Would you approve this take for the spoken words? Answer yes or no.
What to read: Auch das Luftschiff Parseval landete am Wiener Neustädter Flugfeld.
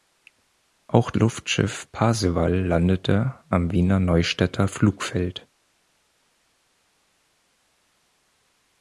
no